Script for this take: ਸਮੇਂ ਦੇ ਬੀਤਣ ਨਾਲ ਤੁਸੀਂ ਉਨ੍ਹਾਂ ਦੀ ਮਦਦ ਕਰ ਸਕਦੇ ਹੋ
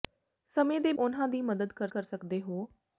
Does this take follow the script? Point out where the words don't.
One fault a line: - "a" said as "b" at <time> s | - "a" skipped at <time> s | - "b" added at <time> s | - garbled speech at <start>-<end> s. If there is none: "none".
- "ਬੀਤਣ ਨਾਲ ਤੁਸੀਂ" skipped at 0.9 s
- "ਕਰ" added at 1.9 s